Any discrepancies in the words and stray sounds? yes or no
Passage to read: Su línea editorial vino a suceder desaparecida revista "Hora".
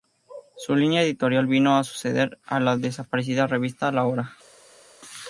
yes